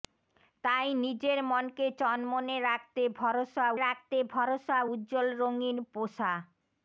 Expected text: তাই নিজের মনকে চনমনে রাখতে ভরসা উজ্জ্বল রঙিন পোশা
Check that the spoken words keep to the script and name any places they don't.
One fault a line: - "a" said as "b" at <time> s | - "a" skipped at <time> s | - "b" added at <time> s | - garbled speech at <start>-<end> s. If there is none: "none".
- "রাখতে ভরসা" added at 3.8 s